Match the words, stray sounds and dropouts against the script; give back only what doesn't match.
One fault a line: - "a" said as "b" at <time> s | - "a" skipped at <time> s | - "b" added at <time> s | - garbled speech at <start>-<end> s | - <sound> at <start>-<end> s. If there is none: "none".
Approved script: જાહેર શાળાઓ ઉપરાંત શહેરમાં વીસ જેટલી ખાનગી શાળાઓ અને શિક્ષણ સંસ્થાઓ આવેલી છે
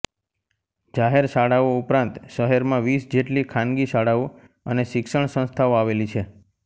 none